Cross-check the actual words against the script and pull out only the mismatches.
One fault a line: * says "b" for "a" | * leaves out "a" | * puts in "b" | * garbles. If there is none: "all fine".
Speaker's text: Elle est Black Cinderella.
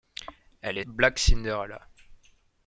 all fine